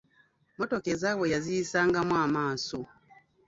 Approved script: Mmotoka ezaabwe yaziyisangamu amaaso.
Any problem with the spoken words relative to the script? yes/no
no